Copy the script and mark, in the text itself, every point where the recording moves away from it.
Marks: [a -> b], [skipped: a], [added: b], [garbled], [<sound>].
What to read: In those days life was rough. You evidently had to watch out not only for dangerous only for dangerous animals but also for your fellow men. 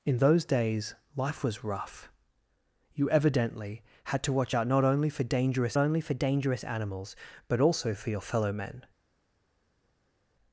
In those days life was rough. You evidently had to watch out not only for dangerous only for dangerous animals but also for your fellow men.